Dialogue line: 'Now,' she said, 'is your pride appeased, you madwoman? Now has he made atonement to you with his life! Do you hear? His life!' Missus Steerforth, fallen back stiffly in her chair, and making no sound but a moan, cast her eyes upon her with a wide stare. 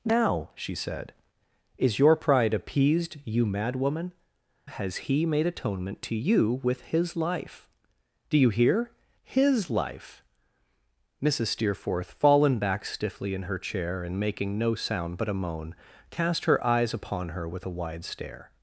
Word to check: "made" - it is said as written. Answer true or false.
true